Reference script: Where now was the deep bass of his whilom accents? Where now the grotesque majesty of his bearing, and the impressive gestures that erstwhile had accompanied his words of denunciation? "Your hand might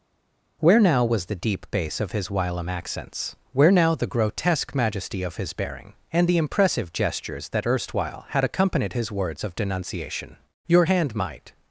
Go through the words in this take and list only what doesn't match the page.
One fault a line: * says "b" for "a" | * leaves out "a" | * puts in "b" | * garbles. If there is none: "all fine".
all fine